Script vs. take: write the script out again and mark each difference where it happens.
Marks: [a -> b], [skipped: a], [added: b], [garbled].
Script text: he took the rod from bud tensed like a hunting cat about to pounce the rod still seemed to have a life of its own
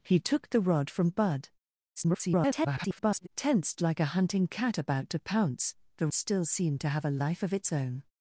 he took the rod from bud [garbled] tensed like a hunting cat about to pounce the [skipped: rod] still seemed to have a life of its own